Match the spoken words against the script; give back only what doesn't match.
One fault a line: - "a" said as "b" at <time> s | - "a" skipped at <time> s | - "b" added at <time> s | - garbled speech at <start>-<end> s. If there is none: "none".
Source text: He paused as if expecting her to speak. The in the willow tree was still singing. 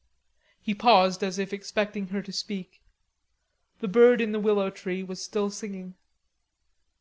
- "bird" added at 3.9 s